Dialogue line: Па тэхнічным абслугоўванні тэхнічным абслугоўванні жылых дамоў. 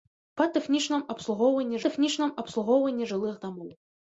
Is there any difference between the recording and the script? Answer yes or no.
no